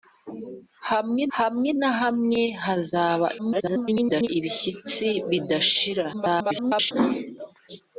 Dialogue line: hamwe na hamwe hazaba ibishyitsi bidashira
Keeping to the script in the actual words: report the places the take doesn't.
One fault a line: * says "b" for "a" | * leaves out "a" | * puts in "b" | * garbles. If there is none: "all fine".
* puts in "hamwe"
* garbles
* garbles